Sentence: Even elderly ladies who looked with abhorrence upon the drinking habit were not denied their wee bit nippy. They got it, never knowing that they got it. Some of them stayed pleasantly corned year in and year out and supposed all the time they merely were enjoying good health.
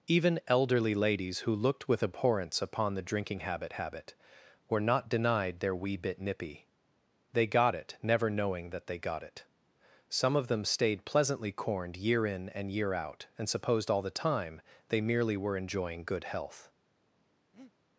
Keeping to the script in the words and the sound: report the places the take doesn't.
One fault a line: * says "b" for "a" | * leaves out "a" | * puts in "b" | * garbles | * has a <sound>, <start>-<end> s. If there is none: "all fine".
* puts in "habit"
* has a breath, 17.5-17.7 s